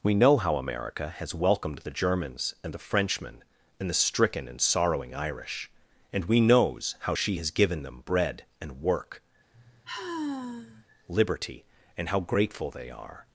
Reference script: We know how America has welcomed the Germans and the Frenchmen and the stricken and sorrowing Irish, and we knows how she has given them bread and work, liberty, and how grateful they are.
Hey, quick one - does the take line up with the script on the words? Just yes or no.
yes